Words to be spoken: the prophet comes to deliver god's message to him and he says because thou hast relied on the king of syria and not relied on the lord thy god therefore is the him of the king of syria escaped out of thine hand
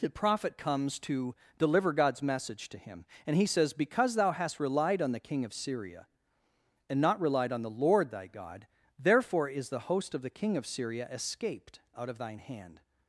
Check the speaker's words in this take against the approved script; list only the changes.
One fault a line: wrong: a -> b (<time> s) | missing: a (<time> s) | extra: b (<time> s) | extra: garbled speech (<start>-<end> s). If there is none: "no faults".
wrong: him -> host (9.8 s)